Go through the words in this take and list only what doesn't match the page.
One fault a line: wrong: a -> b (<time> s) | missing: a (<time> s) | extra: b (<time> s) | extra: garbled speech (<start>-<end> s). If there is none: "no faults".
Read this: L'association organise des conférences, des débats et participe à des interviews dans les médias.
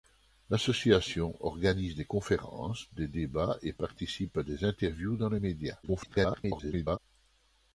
extra: garbled speech (5.8-7.0 s)